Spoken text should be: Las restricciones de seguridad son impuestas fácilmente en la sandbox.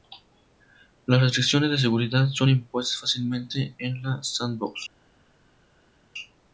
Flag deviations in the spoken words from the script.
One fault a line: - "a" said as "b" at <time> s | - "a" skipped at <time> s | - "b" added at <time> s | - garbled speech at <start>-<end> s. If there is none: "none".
none